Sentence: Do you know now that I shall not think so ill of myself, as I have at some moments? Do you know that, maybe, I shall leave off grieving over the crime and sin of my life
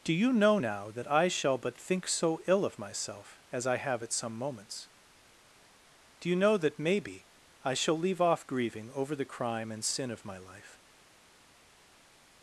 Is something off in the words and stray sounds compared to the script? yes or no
yes